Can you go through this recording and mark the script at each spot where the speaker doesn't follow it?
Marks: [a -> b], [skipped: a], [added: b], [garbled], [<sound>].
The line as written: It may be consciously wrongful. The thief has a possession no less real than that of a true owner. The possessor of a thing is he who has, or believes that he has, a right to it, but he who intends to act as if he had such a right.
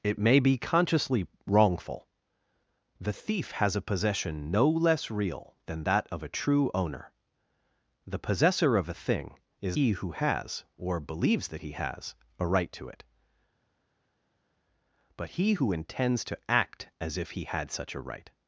It may be consciously wrongful. The thief has a possession no less real than that of a true owner. The possessor of a thing is he who has, or believes that he has, a right to it, but he who intends to act as if he had such a right.